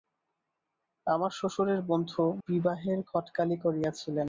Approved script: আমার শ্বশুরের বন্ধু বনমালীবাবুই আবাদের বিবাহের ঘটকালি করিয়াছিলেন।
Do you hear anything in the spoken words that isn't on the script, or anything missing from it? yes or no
yes